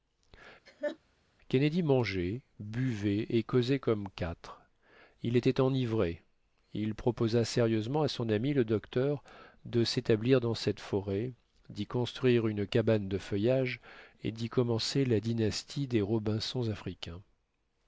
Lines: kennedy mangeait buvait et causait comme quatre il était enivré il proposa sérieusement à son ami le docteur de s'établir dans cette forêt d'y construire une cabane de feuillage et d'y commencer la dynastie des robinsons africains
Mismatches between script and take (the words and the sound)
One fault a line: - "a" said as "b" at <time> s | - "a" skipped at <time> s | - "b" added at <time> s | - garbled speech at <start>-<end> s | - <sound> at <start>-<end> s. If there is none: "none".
- laugh at 0.7-1.0 s